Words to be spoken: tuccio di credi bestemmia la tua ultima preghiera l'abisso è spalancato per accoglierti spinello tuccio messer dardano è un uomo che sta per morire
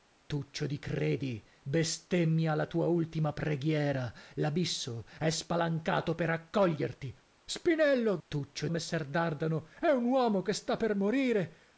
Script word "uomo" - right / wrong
right